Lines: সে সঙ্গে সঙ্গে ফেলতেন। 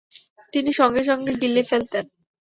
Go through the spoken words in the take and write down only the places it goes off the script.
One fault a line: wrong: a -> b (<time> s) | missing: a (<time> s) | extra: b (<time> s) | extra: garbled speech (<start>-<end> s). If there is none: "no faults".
wrong: সে -> তিনি (0.5 s)
extra: গিলে (1.4 s)